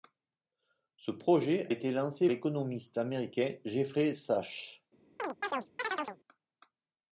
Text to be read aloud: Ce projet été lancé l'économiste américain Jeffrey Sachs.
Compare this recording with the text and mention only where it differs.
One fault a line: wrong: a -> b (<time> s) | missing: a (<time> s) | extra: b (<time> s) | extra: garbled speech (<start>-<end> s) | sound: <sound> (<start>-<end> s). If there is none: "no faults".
sound: chirp (5.2-6.2 s)